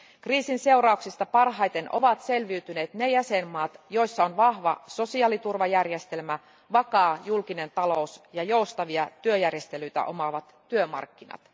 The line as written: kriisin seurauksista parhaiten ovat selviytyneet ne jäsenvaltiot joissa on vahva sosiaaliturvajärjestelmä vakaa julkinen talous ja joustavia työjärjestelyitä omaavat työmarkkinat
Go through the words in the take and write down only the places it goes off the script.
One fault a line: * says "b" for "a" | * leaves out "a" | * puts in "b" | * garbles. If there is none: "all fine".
all fine